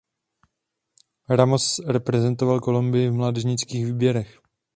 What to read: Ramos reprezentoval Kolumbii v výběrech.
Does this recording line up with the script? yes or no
no